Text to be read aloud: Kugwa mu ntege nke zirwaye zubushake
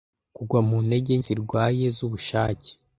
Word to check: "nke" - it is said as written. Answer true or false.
false